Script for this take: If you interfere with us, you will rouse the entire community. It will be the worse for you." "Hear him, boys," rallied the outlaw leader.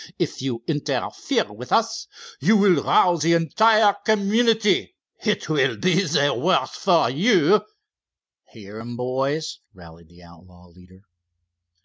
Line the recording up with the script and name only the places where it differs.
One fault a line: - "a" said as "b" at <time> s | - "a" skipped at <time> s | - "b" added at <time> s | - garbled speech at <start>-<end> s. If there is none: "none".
none